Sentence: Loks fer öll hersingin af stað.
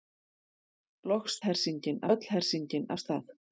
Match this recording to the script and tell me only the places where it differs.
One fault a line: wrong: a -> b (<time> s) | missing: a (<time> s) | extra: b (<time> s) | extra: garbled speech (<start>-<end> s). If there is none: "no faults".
wrong: fer -> hersingin (1.4 s)